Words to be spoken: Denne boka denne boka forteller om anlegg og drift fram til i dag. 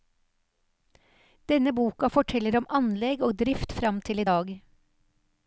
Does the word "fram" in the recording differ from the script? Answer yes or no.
no